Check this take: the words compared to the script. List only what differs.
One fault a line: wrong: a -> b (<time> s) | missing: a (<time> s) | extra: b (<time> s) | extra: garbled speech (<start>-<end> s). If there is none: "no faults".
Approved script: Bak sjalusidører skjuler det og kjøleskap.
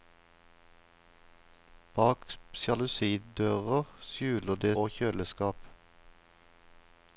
no faults